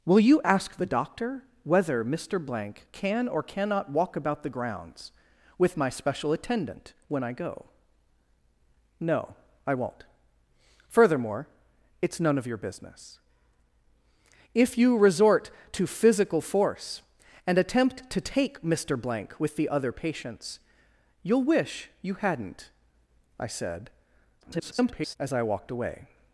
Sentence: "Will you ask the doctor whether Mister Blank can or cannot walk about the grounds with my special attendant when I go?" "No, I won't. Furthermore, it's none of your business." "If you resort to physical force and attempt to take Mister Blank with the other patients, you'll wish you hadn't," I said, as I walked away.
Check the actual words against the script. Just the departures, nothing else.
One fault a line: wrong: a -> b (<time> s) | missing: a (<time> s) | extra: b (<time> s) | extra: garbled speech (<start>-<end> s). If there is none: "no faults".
extra: garbled speech (24.4-25.2 s)